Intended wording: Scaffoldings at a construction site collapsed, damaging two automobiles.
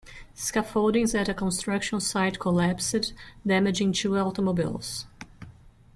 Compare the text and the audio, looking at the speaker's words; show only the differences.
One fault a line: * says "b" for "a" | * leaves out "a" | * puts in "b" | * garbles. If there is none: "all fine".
all fine